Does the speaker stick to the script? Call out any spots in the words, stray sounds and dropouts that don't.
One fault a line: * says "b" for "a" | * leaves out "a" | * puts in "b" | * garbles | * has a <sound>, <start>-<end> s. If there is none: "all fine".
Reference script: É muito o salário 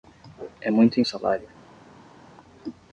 all fine